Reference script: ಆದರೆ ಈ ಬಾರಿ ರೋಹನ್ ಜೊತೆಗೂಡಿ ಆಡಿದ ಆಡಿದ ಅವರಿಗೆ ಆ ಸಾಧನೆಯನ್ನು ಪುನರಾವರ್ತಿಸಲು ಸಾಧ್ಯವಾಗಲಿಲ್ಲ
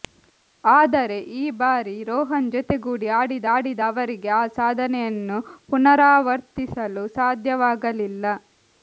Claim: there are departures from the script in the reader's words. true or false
false